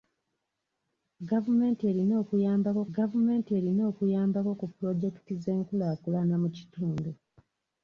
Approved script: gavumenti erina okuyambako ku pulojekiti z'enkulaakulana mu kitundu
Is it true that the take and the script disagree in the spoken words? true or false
true